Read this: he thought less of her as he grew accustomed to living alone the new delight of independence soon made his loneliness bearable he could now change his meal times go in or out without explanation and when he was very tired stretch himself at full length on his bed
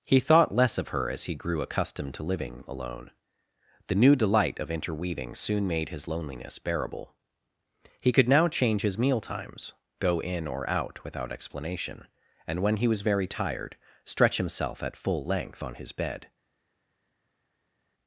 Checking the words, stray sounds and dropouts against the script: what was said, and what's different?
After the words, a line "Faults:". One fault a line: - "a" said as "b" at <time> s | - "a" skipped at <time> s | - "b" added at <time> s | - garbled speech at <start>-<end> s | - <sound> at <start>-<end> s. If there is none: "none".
he thought less of her as he grew accustomed to living alone the new delight of interweaving soon made his loneliness bearable he could now change his meal times go in or out without explanation and when he was very tired stretch himself at full length on his bed
Faults:
- "independence" said as "interweaving" at 4.7 s